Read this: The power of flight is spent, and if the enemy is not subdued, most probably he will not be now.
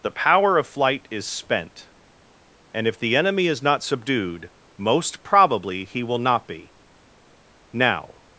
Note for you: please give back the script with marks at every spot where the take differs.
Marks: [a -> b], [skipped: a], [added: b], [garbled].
The power of flight is spent, and if the enemy is not subdued, most probably he will not be now.